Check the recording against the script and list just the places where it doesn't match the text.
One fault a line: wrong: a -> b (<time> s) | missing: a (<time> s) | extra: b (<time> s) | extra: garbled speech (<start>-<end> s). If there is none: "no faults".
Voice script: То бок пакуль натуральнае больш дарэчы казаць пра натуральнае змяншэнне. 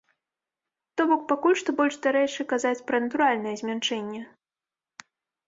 wrong: натуральнае -> што (1.6 s)